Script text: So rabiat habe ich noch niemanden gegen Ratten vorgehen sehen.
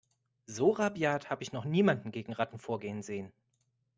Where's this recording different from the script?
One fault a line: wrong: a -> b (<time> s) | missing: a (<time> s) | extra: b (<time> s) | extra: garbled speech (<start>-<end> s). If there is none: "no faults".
no faults